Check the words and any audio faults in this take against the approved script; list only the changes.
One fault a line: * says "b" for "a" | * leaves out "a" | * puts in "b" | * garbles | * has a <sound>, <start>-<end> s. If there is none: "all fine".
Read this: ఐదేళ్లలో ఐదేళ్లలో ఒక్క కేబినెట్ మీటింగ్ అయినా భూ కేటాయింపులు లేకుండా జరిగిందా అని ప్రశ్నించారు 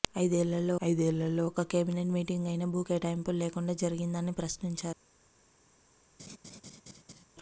* has a laugh, 6.2-7.2 s